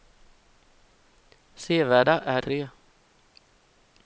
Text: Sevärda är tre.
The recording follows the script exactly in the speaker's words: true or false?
true